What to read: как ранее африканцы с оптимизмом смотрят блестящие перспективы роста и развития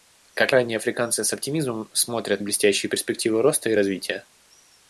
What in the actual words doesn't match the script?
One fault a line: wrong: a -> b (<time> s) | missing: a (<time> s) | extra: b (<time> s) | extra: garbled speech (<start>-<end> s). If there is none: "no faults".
no faults